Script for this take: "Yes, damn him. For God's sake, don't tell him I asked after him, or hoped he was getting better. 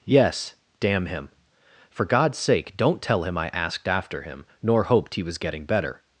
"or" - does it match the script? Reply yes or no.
no